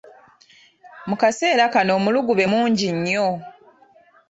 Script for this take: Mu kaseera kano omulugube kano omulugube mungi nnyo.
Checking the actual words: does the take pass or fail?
fail